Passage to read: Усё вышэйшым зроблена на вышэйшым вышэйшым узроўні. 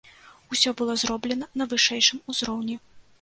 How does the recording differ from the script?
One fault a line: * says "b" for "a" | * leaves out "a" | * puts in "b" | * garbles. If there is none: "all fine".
* says "было" for "вышэйшым"
* leaves out "вышэйшым"